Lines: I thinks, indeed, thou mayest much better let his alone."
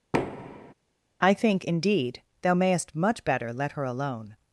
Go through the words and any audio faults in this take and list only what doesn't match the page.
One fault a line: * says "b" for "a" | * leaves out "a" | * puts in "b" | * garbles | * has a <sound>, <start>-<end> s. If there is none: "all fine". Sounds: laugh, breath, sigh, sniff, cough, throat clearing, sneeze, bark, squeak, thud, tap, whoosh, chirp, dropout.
* has a thud, 0.1-0.7 s
* says "think" for "thinks"
* says "her" for "his"